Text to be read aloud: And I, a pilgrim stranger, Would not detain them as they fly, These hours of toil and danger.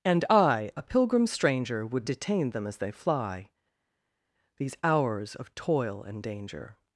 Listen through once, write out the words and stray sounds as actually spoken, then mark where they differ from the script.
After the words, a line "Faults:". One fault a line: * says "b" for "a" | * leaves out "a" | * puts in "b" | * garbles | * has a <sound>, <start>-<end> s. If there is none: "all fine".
And I, a pilgrim stranger, Would detain them as they fly, These hours of toil and danger.
Faults:
* leaves out "not"